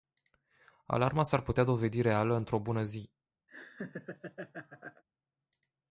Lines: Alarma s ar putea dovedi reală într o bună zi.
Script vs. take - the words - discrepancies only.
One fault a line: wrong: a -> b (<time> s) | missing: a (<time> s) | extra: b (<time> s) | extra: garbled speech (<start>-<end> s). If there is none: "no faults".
no faults